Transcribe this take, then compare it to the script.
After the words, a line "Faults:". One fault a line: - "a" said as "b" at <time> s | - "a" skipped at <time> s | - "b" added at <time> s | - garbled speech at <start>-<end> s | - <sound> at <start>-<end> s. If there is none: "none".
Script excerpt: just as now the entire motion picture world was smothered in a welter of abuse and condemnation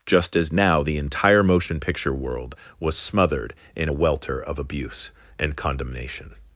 just as now the entire motion picture world was smothered in a welter of abuse and condemnation
Faults:
none